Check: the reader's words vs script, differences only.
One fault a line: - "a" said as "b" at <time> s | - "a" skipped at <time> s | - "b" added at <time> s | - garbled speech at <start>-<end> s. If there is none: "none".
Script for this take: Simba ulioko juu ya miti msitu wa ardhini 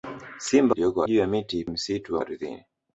none